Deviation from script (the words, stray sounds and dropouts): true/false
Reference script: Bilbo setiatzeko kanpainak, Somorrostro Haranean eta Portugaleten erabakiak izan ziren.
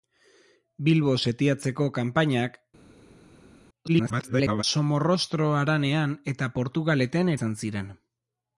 true